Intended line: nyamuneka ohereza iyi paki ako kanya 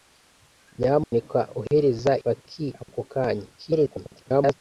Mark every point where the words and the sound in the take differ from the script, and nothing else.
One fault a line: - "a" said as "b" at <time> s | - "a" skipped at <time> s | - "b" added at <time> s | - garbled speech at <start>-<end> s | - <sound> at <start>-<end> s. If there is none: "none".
- dropout at 1.0-1.1 s
- "iyi" skipped at 2.1 s
- garbled speech at 3.6-4.5 s